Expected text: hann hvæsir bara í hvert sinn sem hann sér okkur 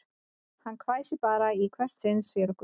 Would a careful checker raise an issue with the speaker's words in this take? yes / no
yes